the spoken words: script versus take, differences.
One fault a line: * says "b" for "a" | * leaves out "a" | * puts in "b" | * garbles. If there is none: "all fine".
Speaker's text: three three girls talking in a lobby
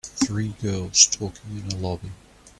* leaves out "three"